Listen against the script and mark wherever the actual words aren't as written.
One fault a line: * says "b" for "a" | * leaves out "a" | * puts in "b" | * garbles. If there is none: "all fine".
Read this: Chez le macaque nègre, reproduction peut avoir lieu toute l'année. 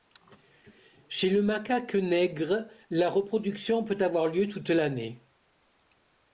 * puts in "la"